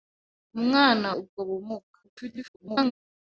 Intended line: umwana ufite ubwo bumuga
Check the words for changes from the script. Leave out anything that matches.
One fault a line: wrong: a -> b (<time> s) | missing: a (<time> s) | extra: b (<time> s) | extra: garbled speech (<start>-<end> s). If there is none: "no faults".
missing: ufite (1.1 s)
extra: garbled speech (2.0-2.9 s)